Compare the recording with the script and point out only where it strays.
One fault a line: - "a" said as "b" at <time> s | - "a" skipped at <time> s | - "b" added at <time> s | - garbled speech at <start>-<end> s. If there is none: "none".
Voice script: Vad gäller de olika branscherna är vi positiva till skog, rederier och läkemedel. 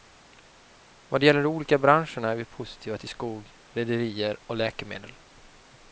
none